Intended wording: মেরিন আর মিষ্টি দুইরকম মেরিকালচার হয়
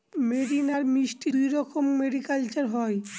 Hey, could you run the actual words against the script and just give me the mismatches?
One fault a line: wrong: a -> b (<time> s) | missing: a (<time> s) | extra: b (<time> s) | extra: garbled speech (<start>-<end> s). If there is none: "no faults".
no faults